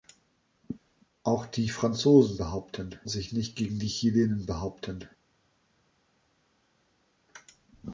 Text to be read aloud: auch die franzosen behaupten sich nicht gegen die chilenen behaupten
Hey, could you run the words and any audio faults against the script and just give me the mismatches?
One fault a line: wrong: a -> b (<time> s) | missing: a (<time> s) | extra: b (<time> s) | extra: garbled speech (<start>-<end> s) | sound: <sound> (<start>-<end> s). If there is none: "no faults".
no faults